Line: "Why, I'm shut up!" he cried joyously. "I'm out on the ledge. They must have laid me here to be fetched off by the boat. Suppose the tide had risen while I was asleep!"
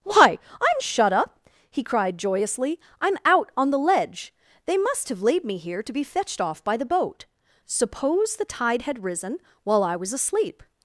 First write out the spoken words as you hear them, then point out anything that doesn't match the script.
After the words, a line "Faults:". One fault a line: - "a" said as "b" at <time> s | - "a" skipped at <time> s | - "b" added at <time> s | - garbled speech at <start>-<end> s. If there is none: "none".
"Why, I'm shut up!" he cried joyously. "I'm out on the ledge. They must have laid me here to be fetched off by the boat. Suppose the tide had risen while I was asleep!"
Faults:
none